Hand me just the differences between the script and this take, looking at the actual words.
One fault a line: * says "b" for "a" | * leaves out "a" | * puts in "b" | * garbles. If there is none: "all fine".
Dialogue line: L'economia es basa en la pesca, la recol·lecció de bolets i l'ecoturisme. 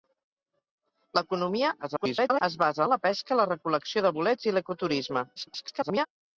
* garbles
* garbles